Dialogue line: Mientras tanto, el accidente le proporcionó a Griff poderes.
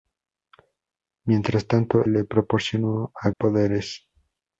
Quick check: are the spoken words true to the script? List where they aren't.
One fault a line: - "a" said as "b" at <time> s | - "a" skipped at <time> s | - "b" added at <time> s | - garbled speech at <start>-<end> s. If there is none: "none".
- "el accidente" skipped at 2.1 s
- "Griff" skipped at 3.3 s